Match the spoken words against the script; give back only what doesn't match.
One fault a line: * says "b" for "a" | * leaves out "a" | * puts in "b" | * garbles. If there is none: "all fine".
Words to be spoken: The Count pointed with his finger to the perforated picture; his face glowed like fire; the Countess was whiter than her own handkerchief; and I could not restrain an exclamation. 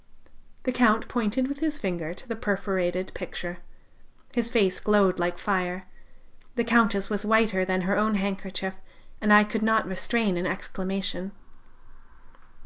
all fine